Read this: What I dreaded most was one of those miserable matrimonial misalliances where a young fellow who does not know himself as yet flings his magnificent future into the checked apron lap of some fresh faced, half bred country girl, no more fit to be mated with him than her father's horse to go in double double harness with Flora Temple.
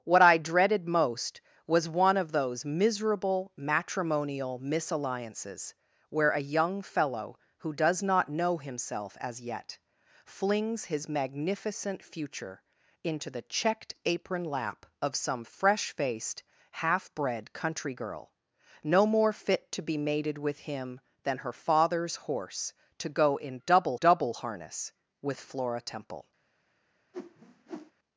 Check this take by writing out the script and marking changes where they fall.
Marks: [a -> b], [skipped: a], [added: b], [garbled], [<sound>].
What I dreaded most was one of those miserable matrimonial misalliances where a young fellow who does not know himself as yet flings his magnificent future into the checked apron lap of some fresh faced, half bred country girl, no more fit to be mated with him than her father's horse to go in double double harness with Flora Temple. [whoosh]